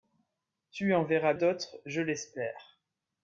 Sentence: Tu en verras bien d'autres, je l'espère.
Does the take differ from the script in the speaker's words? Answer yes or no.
yes